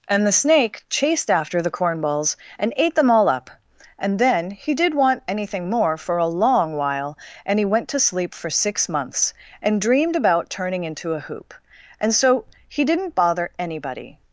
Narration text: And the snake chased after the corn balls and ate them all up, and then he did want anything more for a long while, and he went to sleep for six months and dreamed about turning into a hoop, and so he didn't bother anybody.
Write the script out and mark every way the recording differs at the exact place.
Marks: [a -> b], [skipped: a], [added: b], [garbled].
And the snake chased after the corn balls and ate them all up, and then he did want anything more for a long while, and he went to sleep for six months and dreamed about turning into a hoop, and so he didn't bother anybody.